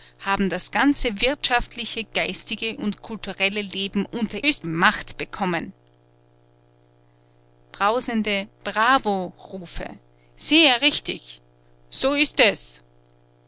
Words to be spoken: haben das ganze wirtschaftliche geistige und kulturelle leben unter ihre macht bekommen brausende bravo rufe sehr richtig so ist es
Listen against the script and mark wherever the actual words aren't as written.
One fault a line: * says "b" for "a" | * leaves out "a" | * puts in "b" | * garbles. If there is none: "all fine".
* says "ist" for "ihre"